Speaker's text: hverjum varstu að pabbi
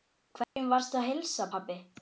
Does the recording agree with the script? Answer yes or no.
no